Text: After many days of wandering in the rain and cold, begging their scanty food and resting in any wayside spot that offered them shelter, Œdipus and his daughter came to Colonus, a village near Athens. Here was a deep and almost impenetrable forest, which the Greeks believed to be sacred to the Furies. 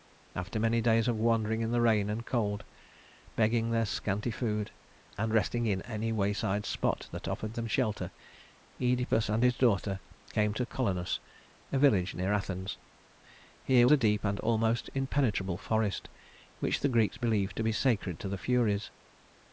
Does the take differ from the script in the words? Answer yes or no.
yes